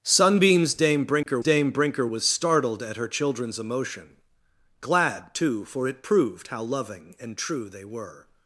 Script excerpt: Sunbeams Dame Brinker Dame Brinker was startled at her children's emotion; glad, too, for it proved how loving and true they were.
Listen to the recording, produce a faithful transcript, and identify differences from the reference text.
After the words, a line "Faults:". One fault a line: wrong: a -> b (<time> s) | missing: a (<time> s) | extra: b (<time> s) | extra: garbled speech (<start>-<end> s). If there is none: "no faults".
Sunbeams Dame Brinker Dame Brinker was startled at her children's emotion; glad, too, for it proved how loving and true they were.
Faults:
no faults